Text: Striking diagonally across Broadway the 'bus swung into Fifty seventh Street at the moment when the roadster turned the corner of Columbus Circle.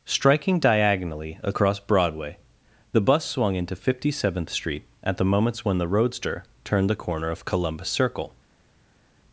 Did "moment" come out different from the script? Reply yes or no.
yes